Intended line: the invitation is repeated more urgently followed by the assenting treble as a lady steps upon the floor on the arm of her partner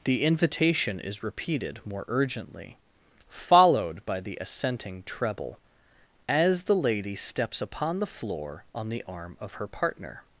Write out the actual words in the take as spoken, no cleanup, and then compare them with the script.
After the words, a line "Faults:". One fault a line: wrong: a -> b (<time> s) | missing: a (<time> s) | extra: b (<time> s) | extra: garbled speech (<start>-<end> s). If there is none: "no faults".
the invitation is repeated more urgently followed by the assenting treble as the lady steps upon the floor on the arm of her partner
Faults:
wrong: a -> the (6.6 s)